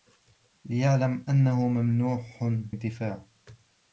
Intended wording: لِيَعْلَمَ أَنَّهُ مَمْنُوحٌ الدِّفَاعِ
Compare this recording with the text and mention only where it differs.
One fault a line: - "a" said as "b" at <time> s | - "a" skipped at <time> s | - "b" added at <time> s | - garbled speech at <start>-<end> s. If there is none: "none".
none